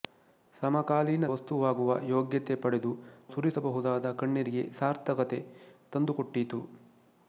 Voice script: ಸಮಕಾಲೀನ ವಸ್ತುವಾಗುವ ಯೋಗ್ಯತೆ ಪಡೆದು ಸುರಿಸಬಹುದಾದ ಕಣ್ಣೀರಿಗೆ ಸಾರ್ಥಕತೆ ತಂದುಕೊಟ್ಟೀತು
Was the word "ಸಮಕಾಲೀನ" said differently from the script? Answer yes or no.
no